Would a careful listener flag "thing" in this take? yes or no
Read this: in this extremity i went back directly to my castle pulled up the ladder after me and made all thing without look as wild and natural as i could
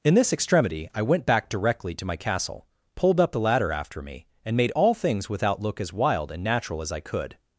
yes